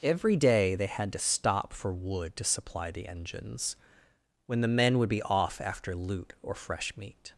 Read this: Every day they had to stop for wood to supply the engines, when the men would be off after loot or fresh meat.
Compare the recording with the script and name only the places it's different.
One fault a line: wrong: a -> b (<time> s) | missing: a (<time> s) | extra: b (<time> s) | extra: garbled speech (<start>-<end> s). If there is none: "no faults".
no faults